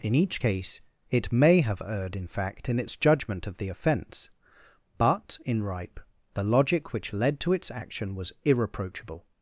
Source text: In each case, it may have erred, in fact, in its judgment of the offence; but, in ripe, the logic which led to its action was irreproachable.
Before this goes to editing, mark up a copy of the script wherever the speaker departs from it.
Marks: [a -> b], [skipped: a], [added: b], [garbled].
In each case, it may have erred, in fact, in its judgment of the offence; but, in ripe, the logic which led to its action was irreproachable.